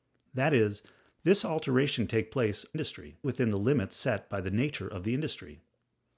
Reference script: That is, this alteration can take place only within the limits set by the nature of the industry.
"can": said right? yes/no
no